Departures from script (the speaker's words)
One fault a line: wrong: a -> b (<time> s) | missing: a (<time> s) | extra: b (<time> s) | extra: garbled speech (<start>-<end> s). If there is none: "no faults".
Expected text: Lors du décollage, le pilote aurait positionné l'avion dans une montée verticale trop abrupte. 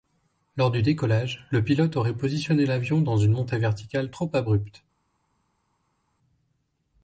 no faults